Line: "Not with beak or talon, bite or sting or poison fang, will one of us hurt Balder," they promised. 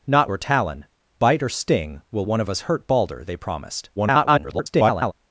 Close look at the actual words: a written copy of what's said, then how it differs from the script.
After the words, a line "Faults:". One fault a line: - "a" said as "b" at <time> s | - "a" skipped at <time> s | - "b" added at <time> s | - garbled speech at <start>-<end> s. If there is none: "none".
"Not or talon, bite or sting will one of us hurt Balder," they promised. [garbled]
Faults:
- "with beak" skipped at 0.3 s
- "or poison fang" skipped at 2.0 s
- garbled speech at 4.0-5.1 s